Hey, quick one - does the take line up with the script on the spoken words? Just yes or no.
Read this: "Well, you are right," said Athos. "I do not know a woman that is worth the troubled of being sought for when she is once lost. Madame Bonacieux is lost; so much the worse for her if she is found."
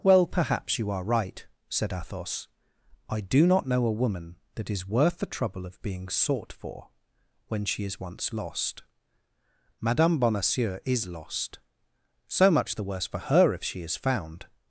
no